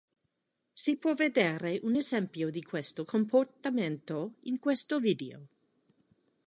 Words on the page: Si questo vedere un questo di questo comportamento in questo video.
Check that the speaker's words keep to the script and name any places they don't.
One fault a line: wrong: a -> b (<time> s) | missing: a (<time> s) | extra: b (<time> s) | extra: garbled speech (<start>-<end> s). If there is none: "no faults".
wrong: questo -> può (1.0 s)
wrong: questo -> esempio (1.9 s)